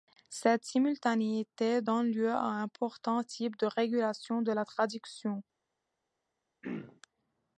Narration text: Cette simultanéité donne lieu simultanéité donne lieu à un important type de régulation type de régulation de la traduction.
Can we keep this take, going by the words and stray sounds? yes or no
no